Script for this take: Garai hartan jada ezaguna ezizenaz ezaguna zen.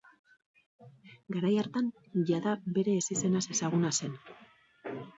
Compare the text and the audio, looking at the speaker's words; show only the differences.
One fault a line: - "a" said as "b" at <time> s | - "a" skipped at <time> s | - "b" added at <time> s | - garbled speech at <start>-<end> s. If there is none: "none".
- "ezaguna" said as "bere" at 2.8 s